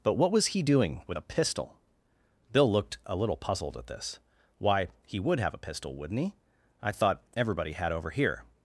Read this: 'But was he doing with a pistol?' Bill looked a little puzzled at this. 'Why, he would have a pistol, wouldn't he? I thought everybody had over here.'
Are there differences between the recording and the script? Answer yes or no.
yes